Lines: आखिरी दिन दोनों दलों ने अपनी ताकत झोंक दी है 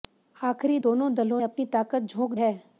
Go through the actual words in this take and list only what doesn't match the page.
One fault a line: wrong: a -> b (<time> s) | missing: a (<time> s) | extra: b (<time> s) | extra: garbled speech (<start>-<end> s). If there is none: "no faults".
missing: दिन (0.8 s)
missing: ने (1.4 s)
missing: दी (2.3 s)